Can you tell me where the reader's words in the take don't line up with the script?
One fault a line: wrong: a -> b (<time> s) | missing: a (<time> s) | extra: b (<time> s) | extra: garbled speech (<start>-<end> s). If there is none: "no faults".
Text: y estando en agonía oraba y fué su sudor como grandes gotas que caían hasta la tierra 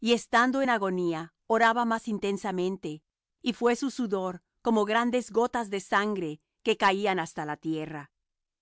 extra: más intensamente (1.8 s)
extra: de sangre (5.7 s)